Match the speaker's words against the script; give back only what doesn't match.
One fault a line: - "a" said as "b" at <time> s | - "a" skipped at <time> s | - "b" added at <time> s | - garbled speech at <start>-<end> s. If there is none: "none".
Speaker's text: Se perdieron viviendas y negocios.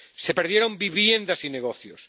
none